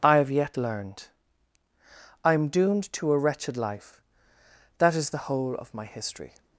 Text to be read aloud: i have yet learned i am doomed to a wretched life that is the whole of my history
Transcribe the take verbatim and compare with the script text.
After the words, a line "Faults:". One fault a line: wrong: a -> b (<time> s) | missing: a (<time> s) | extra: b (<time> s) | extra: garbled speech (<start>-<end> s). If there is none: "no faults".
i have yet learned i am doomed to a wretched life that is the whole of my history
Faults:
no faults